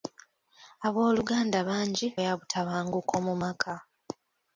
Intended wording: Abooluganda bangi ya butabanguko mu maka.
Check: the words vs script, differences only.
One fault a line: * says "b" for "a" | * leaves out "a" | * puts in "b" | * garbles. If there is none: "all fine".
all fine